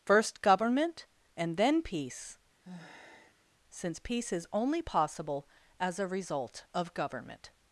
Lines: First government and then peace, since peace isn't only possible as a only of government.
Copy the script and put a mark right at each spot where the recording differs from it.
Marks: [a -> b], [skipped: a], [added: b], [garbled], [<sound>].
First government and then peace, [sigh] since peace [isn't -> is] only possible as a [only -> result] of government.